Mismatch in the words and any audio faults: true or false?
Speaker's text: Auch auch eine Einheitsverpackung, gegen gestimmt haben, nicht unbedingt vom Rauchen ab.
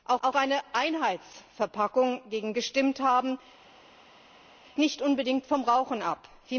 false